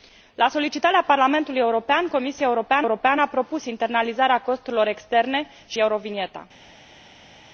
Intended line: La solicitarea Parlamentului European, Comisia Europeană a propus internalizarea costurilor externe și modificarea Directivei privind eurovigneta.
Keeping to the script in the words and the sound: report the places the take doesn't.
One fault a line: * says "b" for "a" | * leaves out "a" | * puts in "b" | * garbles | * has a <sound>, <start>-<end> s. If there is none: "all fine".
* puts in "Europeană"
* leaves out "modificarea Directivei privind"